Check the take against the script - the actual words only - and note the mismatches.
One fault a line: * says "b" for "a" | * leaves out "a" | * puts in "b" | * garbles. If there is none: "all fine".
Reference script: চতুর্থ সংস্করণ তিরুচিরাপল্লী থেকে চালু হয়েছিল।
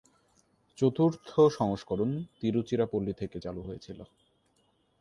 all fine